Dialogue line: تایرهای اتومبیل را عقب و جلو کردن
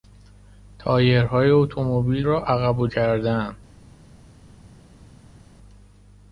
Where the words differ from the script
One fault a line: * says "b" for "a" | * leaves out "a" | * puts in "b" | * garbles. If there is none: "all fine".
* leaves out "جلو"